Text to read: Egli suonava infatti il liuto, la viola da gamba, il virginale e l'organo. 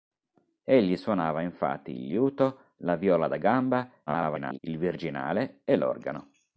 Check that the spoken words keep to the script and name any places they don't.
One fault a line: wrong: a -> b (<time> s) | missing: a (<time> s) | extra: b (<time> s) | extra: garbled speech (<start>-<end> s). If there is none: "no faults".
extra: garbled speech (4.1-4.6 s)